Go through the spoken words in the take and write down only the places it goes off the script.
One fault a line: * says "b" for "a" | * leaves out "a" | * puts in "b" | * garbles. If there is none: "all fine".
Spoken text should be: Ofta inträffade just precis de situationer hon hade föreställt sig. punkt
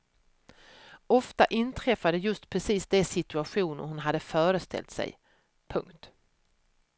all fine